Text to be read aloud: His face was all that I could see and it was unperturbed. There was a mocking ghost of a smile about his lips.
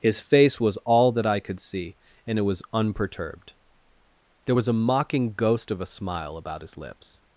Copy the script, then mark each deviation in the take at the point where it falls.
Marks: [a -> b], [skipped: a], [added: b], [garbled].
His face was all that I could see and it was unperturbed. There was a mocking ghost of a smile about his lips.